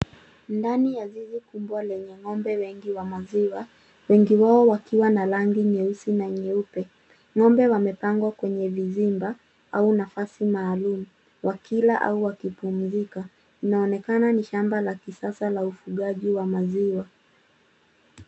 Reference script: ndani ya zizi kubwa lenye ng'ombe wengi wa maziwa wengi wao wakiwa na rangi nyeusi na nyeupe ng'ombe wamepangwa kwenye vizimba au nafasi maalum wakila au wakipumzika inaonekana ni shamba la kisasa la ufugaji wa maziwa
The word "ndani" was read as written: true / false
true